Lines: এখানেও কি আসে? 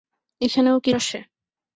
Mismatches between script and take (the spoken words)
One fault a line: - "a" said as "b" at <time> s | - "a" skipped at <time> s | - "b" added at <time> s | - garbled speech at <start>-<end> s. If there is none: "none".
none